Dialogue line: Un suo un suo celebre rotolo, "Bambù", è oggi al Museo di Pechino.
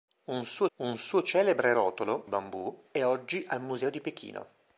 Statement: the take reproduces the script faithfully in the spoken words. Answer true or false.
true